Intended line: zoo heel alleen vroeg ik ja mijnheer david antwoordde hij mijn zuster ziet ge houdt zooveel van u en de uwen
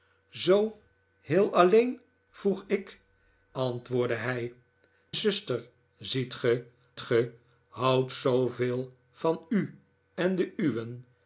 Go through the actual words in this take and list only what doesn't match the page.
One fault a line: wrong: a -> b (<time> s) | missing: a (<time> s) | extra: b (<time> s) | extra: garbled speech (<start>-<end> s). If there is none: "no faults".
missing: ja mijnheer david (3.0 s)
missing: mijn (4.5 s)
extra: ge (7.0 s)